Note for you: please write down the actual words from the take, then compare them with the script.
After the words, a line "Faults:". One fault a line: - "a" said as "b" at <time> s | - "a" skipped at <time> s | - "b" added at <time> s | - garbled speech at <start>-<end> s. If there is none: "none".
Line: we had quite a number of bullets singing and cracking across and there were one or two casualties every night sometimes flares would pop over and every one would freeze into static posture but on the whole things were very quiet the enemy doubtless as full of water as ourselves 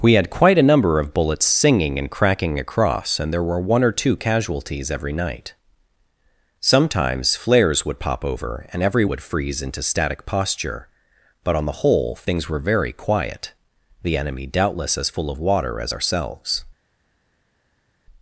we had quite a number of bullets singing and cracking across and there were one or two casualties every night sometimes flares would pop over and every would freeze into static posture but on the whole things were very quiet the enemy doubtless as full of water as ourselves
Faults:
- "one" skipped at 9.1 s